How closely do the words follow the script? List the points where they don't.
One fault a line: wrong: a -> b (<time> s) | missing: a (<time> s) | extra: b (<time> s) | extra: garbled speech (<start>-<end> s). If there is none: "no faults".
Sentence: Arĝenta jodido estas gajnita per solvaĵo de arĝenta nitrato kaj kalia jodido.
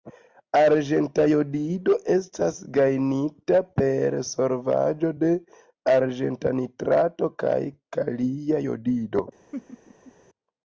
no faults